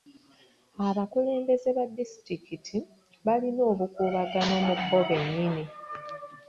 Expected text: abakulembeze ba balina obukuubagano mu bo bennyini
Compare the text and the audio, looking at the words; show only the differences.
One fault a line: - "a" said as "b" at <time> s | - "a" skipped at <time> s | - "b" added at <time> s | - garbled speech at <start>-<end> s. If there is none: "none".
- "disitulikiti" added at 2.0 s